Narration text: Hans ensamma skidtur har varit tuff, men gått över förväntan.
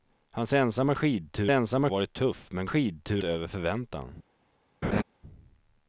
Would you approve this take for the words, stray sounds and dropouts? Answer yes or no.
no